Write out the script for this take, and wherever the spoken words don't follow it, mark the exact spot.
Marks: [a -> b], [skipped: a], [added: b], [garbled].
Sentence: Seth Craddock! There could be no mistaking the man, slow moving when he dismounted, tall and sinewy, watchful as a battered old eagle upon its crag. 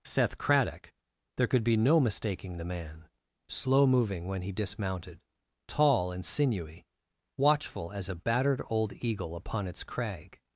Seth Craddock! There could be no mistaking the man, slow moving when he dismounted, tall and sinewy, watchful as a battered old eagle upon its crag.